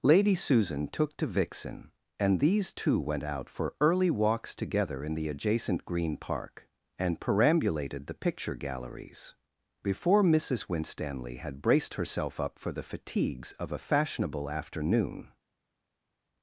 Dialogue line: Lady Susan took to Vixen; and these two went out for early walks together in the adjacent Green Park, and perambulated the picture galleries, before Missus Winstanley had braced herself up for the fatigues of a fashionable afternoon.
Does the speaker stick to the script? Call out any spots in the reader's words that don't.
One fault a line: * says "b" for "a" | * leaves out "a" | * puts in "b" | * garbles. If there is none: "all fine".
all fine